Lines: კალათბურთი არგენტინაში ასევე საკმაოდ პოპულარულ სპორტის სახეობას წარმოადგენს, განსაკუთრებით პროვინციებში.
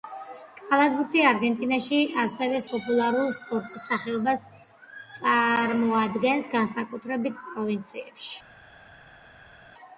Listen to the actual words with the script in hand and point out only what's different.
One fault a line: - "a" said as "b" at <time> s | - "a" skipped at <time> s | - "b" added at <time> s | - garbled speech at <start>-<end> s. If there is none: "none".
- "საკმაოდ" skipped at 2.6 s